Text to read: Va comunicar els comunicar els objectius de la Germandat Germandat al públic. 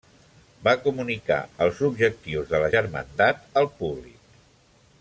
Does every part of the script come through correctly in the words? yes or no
no